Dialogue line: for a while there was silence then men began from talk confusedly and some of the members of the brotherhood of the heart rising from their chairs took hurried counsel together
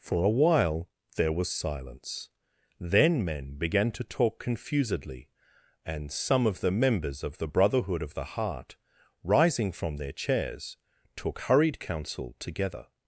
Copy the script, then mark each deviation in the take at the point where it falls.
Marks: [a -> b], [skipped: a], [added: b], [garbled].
for a while there was silence then men began [from -> to] talk confusedly and some of the members of the brotherhood of the heart rising from their chairs took hurried counsel together